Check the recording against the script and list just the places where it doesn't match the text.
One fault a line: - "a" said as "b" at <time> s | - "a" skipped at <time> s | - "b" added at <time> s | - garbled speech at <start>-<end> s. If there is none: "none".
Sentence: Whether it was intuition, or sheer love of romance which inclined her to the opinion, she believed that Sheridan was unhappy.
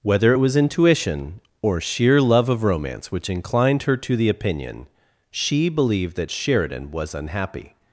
none